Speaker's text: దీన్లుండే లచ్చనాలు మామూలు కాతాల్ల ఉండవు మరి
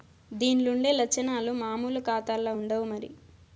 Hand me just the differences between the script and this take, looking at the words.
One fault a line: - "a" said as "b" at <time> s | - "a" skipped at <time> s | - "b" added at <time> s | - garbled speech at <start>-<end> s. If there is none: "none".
none